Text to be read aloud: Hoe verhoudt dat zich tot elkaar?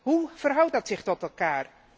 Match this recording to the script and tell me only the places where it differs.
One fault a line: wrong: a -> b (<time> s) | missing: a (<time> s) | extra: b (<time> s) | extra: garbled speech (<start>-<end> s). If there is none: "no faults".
no faults